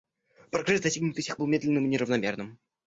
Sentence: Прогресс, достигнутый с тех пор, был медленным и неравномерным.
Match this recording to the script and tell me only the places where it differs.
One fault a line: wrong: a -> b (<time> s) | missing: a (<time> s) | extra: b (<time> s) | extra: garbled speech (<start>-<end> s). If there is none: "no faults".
missing: пор (1.4 s)